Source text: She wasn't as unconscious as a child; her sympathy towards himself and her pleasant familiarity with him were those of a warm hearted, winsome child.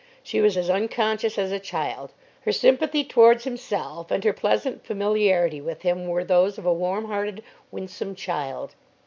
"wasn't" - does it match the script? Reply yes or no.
no